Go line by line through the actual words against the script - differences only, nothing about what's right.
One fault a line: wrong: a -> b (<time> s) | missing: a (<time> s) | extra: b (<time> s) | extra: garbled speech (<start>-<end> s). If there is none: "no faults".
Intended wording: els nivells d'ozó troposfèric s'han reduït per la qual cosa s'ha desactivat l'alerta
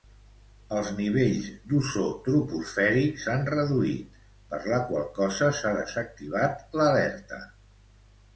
no faults